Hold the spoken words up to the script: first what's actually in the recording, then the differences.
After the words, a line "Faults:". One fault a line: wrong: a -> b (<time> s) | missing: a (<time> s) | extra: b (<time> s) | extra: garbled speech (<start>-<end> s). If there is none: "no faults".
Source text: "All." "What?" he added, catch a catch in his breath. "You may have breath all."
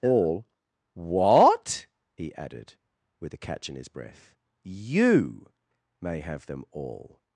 "All." "What?" he added, with a catch in his breath. "You may have them all."
Faults:
wrong: catch -> with (3.2 s)
wrong: breath -> them (6.5 s)